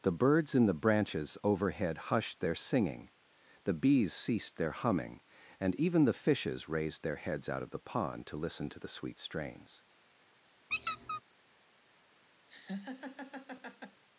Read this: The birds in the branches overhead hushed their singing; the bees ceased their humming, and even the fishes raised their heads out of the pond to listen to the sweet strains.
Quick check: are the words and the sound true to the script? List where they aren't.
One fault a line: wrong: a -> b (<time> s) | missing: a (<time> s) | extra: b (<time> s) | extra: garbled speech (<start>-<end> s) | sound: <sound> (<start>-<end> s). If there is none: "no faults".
sound: squeak (10.7-11.2 s)
sound: laugh (12.5-14.0 s)